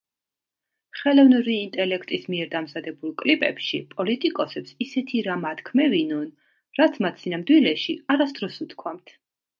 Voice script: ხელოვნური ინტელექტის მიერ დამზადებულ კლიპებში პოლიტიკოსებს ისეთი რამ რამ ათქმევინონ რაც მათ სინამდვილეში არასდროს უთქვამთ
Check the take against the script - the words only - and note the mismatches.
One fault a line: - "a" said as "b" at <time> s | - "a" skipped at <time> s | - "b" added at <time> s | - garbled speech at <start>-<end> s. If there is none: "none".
- "რამ" skipped at 5.4 s